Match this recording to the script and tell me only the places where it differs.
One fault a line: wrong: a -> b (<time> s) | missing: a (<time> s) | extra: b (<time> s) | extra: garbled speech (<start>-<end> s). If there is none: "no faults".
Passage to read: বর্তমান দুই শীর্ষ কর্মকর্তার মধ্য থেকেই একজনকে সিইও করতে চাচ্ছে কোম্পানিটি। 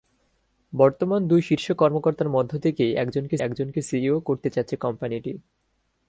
extra: একজনকে (3.4 s)